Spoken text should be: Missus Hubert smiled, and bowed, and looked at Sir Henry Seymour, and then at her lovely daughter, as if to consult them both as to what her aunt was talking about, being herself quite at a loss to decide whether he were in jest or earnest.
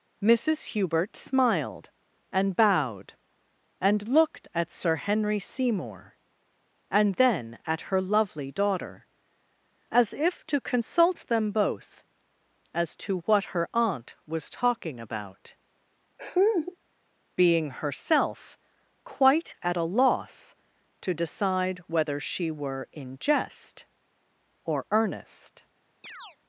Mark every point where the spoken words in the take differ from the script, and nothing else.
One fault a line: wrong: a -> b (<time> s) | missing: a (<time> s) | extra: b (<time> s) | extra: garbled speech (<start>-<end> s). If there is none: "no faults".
wrong: he -> she (22.2 s)